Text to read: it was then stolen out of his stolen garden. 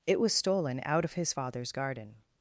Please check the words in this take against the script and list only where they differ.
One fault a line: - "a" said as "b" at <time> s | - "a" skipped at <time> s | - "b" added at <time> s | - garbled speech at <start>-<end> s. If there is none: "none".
- "then" skipped at 0.3 s
- "stolen" said as "father's" at 1.3 s